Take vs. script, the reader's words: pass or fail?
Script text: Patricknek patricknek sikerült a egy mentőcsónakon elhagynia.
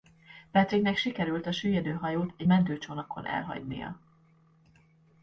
fail